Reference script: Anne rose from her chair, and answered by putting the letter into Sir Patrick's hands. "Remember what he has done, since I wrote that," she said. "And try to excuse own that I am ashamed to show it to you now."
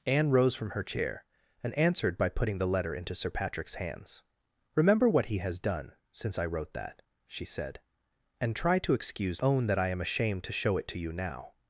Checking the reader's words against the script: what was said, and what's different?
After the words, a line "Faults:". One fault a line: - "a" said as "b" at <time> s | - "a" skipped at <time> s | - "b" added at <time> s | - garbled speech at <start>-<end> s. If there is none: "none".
Anne rose from her chair, and answered by putting the letter into Sir Patrick's hands. "Remember what he has done, since I wrote that," she said. "And try to excuse own that I am ashamed to show it to you now."
Faults:
none